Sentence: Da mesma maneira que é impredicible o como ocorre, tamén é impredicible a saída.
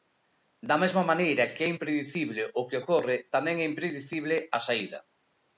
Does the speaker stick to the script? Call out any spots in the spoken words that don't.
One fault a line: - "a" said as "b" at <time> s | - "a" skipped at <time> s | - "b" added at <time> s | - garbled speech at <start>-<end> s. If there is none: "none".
- "como" said as "que" at 2.7 s